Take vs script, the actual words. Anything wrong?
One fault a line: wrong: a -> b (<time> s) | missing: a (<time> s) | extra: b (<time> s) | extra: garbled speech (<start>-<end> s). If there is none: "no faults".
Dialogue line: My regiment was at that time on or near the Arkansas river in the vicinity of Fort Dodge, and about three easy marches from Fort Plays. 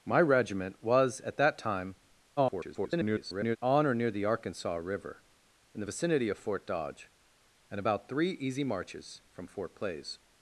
extra: garbled speech (2.4-3.6 s)